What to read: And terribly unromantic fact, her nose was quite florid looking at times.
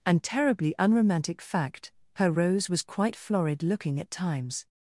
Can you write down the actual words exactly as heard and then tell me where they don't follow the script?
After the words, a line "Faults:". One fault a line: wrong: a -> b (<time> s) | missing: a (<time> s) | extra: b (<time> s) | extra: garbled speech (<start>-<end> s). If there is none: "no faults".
And terribly unromantic fact, her rose was quite florid looking at times.
Faults:
wrong: nose -> rose (2.3 s)